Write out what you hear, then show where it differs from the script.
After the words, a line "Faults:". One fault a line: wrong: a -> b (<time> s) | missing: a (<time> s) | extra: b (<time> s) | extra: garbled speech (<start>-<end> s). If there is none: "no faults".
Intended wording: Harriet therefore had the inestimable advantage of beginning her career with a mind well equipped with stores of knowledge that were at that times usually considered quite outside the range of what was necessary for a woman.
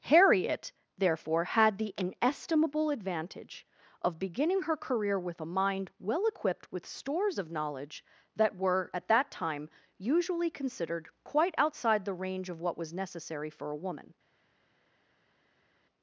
Harriet therefore had the inestimable advantage of beginning her career with a mind well equipped with stores of knowledge that were at that time usually considered quite outside the range of what was necessary for a woman.
Faults:
wrong: times -> time (9.3 s)